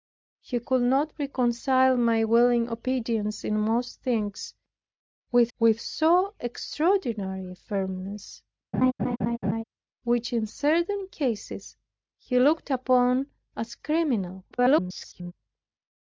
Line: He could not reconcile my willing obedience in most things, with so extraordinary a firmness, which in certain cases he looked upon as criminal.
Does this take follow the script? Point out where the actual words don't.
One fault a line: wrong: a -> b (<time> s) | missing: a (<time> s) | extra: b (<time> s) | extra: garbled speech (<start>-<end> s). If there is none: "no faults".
extra: with (5.6 s)
extra: garbled speech (14.5-15.3 s)